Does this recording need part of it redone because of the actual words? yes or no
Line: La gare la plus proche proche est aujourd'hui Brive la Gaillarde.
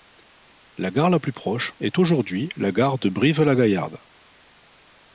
yes